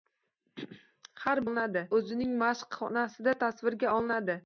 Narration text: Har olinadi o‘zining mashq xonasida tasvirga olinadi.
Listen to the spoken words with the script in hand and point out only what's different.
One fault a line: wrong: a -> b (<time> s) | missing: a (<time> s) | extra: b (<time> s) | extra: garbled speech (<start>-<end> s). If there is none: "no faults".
no faults